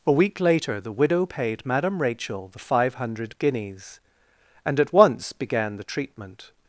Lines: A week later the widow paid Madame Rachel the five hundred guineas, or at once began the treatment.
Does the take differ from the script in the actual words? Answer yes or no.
yes